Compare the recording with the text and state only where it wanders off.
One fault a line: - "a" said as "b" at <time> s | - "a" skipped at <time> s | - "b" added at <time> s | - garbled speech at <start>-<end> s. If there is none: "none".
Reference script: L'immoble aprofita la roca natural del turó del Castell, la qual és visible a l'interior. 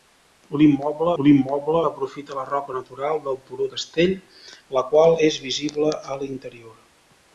- "l'immoble" added at 1.2 s
- "del" skipped at 3.7 s